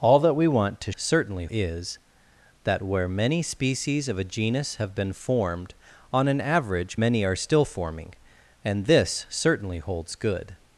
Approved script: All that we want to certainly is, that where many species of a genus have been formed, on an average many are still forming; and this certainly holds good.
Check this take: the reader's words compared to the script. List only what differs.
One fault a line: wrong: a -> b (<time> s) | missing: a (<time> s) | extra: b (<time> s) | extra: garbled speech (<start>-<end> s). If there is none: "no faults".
no faults